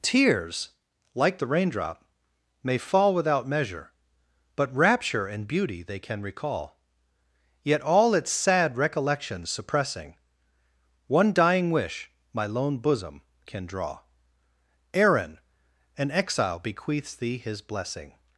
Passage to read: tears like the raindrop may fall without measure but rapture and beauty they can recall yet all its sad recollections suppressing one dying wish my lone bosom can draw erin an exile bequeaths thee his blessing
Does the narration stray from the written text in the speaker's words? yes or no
no